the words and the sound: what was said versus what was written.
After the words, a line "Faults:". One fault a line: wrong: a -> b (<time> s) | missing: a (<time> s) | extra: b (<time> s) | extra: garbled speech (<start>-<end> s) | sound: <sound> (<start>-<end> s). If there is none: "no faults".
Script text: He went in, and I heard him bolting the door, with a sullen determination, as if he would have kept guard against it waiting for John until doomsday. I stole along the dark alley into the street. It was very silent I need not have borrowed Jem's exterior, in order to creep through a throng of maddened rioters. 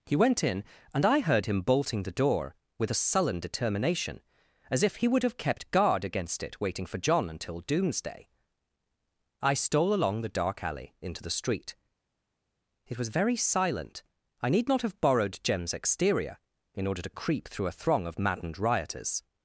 He went in, and I heard him bolting the door, with a sullen determination, as if he would have kept guard against it waiting for John until doomsday. I stole along the dark alley into the street. It was very silent I need not have borrowed Jem's exterior, in order to creep through a throng of maddened rioters.
Faults:
no faults